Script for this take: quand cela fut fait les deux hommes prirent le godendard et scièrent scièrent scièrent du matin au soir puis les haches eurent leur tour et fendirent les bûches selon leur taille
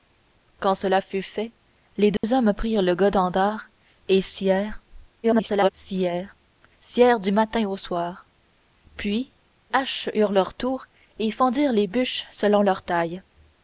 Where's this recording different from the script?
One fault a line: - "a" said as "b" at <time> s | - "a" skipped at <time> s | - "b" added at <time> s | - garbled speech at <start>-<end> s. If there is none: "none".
- garbled speech at 5.2-5.7 s
- "les" skipped at 9.3 s